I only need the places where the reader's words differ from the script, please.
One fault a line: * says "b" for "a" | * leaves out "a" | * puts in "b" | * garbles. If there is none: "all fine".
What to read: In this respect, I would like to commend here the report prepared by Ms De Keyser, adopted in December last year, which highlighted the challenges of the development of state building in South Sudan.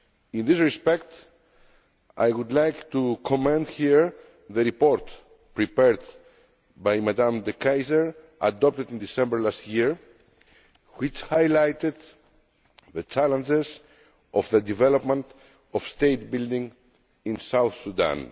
all fine